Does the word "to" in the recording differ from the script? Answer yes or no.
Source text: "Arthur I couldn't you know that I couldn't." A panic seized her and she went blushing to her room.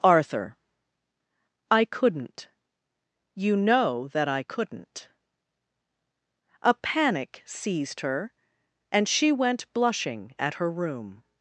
yes